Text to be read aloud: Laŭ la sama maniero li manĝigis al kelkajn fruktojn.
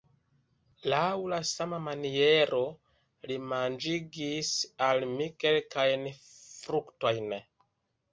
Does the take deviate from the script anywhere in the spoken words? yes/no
yes